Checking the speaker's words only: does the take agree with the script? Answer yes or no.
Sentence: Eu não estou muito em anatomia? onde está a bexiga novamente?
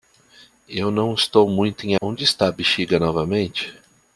no